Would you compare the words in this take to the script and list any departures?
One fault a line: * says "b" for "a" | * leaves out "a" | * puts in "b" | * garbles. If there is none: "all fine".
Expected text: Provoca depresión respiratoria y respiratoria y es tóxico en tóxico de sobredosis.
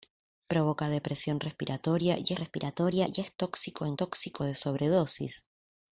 all fine